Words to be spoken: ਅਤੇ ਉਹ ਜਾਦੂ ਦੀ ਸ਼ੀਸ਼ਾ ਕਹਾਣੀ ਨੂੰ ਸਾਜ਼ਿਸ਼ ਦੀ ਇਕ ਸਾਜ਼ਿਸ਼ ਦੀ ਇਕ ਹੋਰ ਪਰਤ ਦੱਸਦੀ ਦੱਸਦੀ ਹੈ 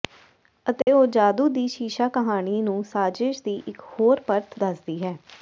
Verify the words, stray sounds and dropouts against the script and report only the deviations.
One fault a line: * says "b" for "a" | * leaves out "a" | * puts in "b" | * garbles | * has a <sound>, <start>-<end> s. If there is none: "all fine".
* has a dropout, 0.8-0.9 s
* leaves out "ਸਾਜ਼ਿਸ਼ ਦੀ ਇਕ"
* leaves out "ਦੱਸਦੀ"